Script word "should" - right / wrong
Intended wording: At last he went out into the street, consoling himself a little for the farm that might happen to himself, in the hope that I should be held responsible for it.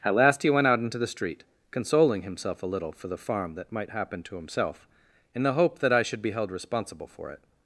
right